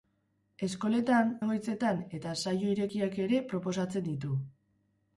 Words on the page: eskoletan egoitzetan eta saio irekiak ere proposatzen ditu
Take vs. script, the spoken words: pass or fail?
pass